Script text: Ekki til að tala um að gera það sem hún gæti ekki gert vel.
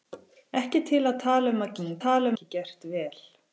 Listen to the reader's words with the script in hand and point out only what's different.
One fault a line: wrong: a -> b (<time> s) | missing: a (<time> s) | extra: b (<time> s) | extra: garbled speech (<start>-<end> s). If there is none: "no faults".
missing: gera það (1.8 s)
wrong: gæti -> tala (2.0 s)